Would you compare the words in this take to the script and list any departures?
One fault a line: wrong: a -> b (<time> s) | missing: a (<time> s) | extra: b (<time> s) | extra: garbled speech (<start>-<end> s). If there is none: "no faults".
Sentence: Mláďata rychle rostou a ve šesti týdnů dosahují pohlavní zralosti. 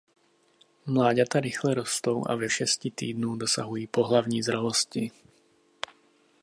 no faults